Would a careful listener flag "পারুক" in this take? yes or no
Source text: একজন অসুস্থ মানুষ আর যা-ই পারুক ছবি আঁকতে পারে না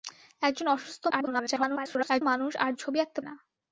yes